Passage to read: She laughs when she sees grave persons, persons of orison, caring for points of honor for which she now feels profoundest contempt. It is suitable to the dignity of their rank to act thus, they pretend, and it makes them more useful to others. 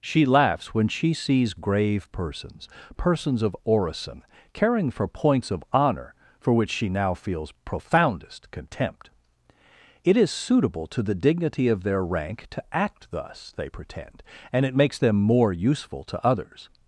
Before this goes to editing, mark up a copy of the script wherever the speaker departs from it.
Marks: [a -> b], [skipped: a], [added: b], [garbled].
She laughs when she sees grave persons, persons of orison, caring for points of honor for which she now feels profoundest contempt. It is suitable to the dignity of their rank to act thus, they pretend, and it makes them more useful to others.